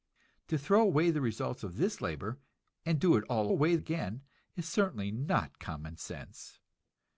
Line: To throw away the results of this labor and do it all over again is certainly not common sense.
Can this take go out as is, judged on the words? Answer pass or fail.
fail